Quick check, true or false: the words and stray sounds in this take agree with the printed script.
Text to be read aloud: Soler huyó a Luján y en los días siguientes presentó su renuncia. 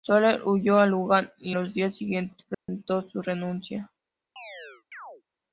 false